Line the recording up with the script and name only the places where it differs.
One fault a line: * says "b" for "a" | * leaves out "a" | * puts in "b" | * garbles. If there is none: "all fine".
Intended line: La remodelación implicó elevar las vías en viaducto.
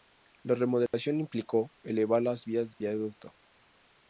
* leaves out "en"